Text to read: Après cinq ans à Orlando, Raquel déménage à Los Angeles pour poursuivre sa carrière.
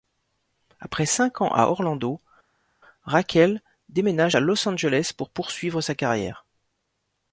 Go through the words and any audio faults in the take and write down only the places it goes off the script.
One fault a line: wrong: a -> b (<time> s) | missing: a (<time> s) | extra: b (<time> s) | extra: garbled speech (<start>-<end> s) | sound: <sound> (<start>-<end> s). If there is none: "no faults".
no faults